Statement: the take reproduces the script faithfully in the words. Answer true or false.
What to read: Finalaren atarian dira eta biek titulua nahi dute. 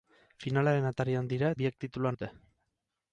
false